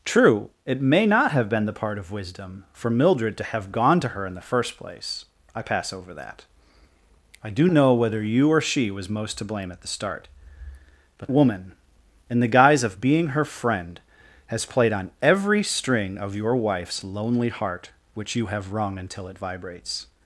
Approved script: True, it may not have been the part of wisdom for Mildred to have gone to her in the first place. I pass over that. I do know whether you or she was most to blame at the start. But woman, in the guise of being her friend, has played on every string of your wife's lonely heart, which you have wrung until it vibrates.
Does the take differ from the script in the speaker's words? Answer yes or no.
no